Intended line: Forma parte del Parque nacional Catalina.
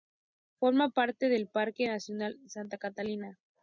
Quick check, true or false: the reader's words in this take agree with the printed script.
false